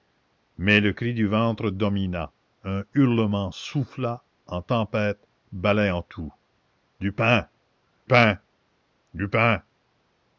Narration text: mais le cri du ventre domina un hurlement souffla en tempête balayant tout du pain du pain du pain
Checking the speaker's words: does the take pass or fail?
fail